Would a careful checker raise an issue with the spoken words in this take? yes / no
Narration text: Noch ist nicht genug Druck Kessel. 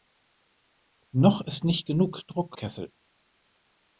no